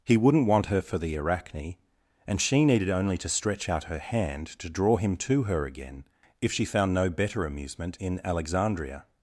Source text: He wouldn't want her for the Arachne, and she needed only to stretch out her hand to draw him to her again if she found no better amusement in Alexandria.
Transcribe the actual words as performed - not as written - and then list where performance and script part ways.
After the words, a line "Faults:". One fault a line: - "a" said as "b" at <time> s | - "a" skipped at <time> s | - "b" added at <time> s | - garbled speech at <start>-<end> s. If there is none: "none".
He wouldn't want her for the Arachne, and she needed only to stretch out her hand to draw him to her again if she found no better amusement in Alexandria.
Faults:
none